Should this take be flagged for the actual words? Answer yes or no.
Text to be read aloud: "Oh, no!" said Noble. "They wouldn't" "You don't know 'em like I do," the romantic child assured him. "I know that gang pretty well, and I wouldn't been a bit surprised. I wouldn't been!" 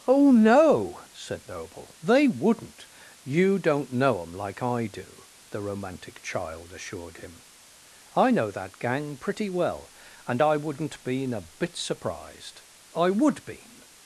yes